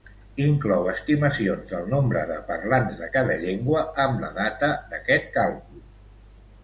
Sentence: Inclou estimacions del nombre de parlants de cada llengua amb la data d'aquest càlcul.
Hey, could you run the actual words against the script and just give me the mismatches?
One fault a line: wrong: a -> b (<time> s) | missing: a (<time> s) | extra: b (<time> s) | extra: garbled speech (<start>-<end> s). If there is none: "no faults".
no faults